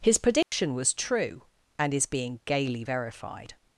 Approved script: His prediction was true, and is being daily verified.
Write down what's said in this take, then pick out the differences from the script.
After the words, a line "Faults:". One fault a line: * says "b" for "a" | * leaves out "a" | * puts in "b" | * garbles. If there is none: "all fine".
His prediction was true, and is being gaily verified.
Faults:
* says "gaily" for "daily"